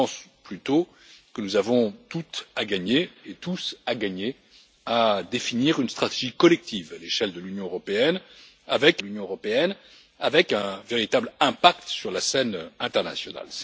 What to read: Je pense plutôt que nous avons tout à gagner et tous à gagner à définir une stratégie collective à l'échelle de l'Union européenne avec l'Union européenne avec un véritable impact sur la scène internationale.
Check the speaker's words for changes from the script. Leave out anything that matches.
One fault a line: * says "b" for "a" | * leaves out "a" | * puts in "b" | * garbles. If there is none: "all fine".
all fine